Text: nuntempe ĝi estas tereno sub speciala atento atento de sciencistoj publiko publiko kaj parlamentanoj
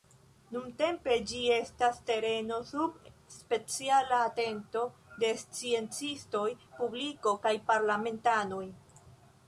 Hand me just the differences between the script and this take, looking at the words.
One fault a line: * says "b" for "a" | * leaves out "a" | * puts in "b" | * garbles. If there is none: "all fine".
* leaves out "atento"
* leaves out "publiko"